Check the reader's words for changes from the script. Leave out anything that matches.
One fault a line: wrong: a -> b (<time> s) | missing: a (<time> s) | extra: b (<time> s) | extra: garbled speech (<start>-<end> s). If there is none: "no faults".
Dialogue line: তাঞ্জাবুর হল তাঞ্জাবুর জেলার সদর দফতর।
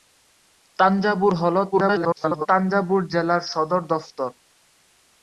extra: garbled speech (1.7-2.5 s)